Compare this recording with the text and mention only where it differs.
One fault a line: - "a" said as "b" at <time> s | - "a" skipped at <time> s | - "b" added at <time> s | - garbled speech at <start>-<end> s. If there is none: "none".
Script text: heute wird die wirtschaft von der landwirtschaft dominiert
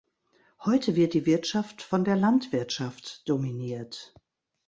none